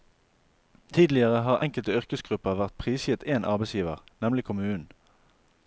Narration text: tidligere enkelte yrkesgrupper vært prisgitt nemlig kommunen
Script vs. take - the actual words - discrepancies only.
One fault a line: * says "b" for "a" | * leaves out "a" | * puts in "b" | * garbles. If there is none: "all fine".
* puts in "har"
* puts in "én arbeidsgiver"